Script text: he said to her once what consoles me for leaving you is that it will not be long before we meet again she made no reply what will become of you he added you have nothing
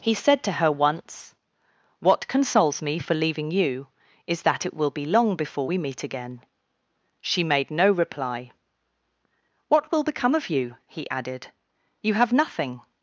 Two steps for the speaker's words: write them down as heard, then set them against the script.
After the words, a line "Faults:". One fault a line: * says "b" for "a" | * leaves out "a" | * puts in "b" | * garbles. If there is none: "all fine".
he said to her once what consoles me for leaving you is that it will be long before we meet again she made no reply what will become of you he added you have nothing
Faults:
* leaves out "not"